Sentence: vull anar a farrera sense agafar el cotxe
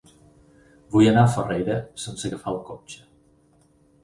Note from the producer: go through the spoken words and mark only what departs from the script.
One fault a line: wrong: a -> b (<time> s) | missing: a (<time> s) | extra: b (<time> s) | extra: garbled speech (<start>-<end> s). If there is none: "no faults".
no faults